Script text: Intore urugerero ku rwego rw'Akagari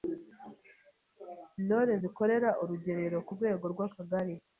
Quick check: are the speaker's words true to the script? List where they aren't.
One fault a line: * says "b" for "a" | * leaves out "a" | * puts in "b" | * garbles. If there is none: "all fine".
* puts in "zikorera"